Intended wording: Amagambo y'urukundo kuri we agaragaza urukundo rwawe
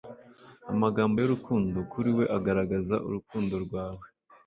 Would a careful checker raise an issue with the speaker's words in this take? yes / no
no